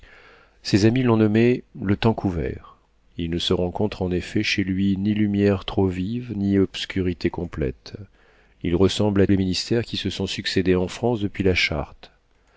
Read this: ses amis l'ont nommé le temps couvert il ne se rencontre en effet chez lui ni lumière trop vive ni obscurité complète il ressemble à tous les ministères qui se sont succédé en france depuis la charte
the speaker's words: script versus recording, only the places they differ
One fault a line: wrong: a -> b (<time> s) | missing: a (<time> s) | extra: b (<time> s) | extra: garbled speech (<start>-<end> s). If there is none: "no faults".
missing: tous (9.3 s)